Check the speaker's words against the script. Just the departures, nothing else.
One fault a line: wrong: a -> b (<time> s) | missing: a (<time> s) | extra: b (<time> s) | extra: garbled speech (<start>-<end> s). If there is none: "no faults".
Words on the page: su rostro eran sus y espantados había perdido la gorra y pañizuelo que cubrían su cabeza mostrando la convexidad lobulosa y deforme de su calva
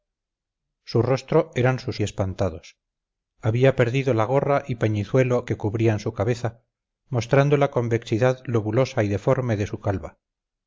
no faults